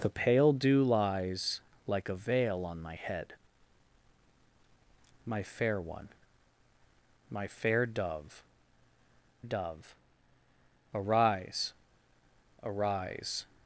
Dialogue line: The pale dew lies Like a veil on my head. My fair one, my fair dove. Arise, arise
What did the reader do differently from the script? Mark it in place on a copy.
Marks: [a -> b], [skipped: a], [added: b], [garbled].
The pale dew lies Like a veil on my head. My fair one, my fair dove. [added: dove] Arise, arise